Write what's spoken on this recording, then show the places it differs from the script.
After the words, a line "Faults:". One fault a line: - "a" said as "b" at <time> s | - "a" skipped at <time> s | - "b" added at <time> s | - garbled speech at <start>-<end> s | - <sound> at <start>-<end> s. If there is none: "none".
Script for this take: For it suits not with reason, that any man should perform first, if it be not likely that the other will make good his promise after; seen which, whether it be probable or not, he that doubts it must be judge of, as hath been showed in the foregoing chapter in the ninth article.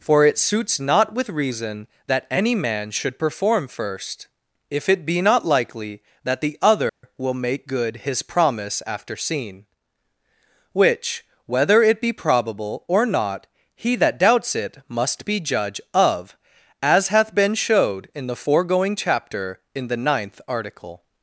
For it suits not with reason, that any man should perform first, if it be not likely that the other will make good his promise after; seen which, whether it be probable or not, he that doubts it must be judge of, as hath been showed in the foregoing chapter in the ninth article.
Faults:
- dropout at 6.9-7.0 s